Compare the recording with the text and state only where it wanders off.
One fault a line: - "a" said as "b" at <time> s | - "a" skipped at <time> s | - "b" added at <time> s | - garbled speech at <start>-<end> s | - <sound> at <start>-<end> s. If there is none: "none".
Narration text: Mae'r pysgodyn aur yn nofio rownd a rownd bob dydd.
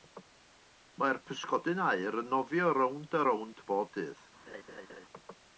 - laugh at 4.5-5.1 s